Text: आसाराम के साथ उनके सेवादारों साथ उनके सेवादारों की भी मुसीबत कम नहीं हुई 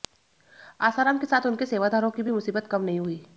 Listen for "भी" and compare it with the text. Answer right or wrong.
right